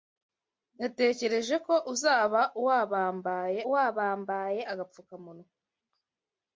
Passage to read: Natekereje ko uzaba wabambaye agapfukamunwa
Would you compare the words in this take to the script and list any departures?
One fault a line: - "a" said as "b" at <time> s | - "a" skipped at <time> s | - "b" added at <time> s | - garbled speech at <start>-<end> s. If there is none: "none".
- "wabambaye" added at 3.7 s